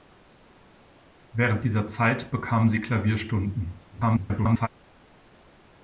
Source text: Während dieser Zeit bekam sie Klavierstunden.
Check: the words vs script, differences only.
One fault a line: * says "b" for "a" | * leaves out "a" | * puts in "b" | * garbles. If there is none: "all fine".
* garbles